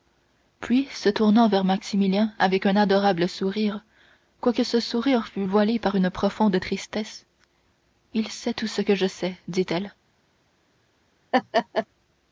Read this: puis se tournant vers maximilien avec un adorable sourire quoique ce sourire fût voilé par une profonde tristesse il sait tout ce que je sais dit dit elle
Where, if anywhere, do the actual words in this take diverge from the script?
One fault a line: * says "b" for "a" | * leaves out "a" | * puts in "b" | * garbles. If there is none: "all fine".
* leaves out "dit"